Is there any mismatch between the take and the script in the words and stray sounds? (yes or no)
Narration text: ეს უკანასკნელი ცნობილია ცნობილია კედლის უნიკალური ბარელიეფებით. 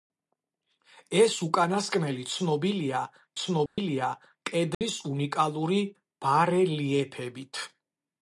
yes